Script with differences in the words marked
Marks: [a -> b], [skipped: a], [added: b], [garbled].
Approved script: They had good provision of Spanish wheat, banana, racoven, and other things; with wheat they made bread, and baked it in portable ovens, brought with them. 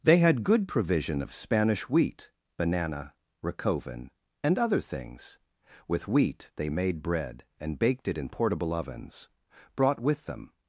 They had good provision of Spanish wheat, banana, racoven, and other things; with wheat they made bread, and baked it in portable ovens, brought with them.